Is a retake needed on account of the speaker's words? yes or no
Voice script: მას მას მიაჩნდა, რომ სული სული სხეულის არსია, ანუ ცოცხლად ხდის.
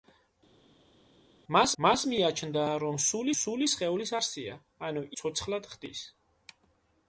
no